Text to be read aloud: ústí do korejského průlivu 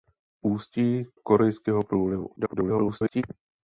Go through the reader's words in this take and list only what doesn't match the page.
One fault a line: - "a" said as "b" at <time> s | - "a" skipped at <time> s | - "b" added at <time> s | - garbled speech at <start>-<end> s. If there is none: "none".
- "do" skipped at 1.1 s
- garbled speech at 2.4-3.2 s